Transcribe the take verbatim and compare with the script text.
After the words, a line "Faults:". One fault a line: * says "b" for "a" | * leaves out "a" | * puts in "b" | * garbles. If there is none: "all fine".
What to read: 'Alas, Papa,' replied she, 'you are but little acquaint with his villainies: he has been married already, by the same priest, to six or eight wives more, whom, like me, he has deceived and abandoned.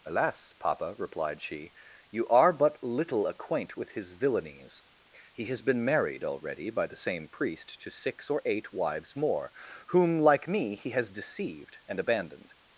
'Alas, Papa,' replied she, 'you are but little acquaint with his villainies: he has been married already, by the same priest, to six or eight wives more, whom, like me, he has deceived and abandoned.
Faults:
all fine